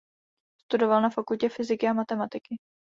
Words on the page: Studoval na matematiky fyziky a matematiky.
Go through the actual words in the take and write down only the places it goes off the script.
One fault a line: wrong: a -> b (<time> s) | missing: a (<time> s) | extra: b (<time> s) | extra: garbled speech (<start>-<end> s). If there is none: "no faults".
wrong: matematiky -> fakultě (1.1 s)